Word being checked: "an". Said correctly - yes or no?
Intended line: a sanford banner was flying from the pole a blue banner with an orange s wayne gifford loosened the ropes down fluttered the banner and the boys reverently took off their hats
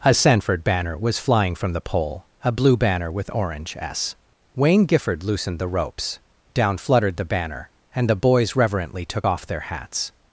no